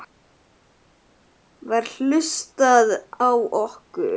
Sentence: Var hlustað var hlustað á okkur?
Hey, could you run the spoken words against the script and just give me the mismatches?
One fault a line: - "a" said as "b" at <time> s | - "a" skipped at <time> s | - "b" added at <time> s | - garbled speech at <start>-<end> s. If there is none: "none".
- "var hlustað" skipped at 2.9 s